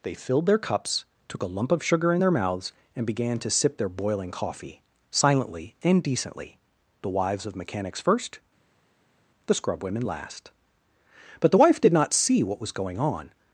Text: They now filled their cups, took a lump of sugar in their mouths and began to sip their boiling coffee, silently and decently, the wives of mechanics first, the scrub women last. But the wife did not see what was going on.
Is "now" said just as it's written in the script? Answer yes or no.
no